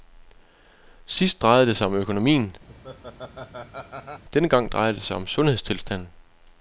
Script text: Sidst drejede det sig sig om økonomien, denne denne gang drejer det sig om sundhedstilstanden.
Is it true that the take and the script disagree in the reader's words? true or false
true